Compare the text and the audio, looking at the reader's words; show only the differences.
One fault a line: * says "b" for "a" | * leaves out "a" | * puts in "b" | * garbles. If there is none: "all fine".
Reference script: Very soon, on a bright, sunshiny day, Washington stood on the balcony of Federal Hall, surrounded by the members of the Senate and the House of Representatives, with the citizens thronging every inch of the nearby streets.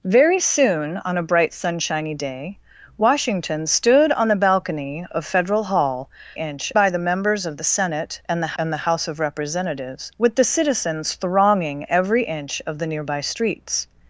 * says "inch" for "surrounded"
* puts in "and the"